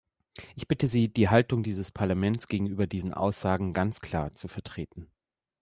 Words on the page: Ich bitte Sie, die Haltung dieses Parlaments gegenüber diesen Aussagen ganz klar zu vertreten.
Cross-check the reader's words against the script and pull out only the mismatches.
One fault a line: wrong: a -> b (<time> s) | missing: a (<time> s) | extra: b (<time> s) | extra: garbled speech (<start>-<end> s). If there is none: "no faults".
no faults